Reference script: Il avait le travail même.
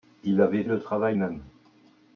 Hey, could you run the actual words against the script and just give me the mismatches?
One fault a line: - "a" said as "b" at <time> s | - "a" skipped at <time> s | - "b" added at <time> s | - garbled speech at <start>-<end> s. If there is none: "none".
none